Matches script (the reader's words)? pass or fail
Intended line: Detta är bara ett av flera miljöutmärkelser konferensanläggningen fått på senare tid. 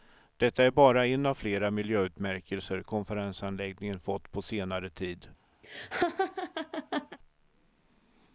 fail